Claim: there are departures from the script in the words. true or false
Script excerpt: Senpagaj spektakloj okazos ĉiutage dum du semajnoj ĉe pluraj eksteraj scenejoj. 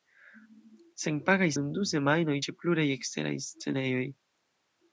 true